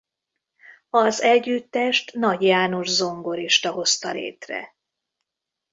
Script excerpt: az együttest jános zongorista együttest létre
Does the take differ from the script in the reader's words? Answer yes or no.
yes